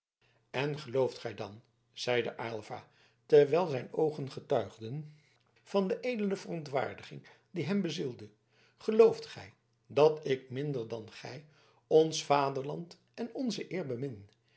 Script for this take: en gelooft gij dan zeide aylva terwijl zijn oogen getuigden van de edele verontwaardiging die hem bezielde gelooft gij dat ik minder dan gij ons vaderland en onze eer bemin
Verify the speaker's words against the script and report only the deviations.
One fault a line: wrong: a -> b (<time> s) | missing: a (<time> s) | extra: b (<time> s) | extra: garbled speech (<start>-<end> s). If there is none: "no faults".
no faults